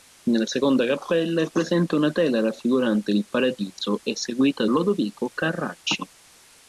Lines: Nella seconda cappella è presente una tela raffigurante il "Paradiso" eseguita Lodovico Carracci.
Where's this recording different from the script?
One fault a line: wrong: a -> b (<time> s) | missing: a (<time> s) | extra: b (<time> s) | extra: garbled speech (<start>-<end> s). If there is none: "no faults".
no faults